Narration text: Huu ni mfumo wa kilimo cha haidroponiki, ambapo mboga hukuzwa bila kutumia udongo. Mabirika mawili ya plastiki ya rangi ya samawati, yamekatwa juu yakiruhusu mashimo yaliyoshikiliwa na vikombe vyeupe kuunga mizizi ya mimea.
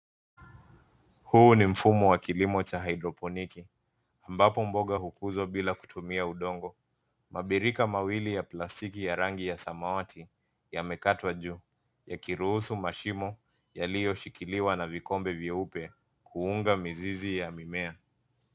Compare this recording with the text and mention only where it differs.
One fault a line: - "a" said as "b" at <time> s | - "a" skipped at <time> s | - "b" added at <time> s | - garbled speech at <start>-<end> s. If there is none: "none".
none